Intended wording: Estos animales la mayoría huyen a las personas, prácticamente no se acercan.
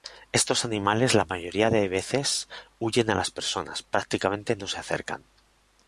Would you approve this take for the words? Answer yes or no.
no